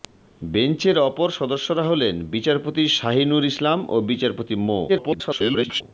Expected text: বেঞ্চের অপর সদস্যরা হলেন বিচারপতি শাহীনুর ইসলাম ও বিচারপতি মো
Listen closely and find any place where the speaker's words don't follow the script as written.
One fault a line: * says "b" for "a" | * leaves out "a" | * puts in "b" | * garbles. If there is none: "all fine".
* garbles